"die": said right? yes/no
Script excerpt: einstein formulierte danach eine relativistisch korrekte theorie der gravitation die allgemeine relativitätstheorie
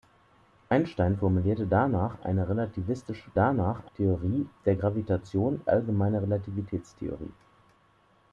no